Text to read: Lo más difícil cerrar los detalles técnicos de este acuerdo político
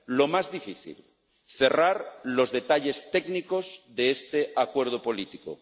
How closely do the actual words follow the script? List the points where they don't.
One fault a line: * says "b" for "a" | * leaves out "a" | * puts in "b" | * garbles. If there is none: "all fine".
all fine